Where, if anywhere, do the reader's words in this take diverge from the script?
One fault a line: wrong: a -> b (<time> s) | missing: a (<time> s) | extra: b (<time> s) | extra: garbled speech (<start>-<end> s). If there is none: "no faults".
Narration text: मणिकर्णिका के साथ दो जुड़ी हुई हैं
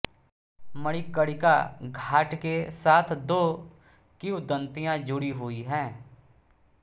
extra: घाट (1.8 s)
extra: किंवदंतियाँ (4.2 s)